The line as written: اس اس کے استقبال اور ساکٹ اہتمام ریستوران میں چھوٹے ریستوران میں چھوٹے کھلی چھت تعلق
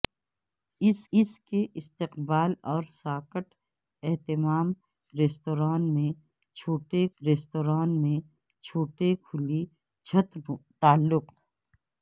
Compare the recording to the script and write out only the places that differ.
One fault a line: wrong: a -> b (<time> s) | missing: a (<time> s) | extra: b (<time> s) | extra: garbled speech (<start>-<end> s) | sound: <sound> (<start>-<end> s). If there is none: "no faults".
no faults